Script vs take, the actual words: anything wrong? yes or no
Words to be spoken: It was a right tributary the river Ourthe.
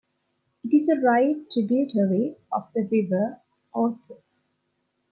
yes